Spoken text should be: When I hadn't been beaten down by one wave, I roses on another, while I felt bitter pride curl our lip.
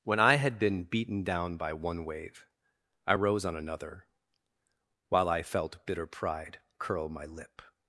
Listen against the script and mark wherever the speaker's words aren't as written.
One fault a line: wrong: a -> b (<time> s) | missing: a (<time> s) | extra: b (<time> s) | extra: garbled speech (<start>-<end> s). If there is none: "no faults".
wrong: hadn't -> had (0.3 s)
wrong: roses -> rose (3.1 s)
wrong: our -> my (7.1 s)